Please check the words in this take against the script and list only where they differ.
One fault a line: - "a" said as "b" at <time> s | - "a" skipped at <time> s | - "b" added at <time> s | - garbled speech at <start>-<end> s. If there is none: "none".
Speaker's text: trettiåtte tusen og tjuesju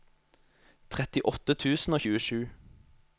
none